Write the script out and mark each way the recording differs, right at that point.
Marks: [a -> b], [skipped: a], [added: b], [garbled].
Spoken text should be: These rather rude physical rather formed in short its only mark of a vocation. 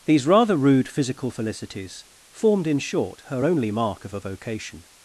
These rather rude physical [rather -> felicities] formed in short [its -> her] only mark of a vocation.